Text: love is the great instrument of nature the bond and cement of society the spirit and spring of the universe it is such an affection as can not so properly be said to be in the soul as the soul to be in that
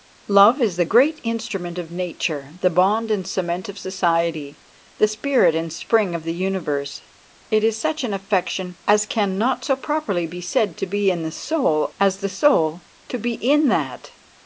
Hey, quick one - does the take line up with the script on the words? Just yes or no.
yes